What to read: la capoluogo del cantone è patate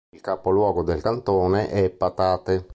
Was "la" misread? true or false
true